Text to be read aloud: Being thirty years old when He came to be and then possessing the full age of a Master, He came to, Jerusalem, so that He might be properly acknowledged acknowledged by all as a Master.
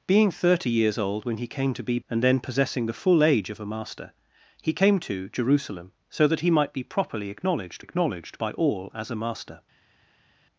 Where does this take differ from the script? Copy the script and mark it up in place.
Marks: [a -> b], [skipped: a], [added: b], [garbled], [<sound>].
Being thirty years old when He came to be and then possessing the full age of a Master, He came to, Jerusalem, so that He might be properly acknowledged acknowledged by all as a Master.